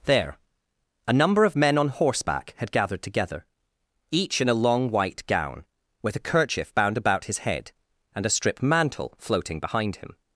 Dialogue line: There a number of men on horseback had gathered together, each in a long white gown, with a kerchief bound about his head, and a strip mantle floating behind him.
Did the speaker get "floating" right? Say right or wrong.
right